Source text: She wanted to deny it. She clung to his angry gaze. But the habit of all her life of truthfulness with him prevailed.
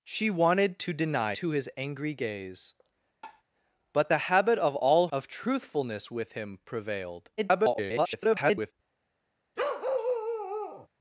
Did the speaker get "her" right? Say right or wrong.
wrong